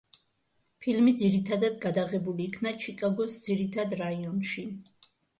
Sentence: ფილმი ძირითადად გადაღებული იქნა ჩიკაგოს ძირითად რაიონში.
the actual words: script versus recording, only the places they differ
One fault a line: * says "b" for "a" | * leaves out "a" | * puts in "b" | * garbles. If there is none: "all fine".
all fine